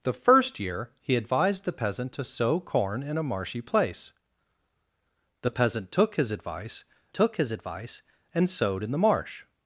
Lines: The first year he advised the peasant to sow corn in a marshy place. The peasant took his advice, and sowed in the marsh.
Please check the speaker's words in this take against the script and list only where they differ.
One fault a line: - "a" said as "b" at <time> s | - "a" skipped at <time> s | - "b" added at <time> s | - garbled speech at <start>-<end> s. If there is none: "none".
- "took his advice" added at 7.1 s